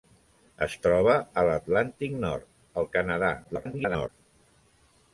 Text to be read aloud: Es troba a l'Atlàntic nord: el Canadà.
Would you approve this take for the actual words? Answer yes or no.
no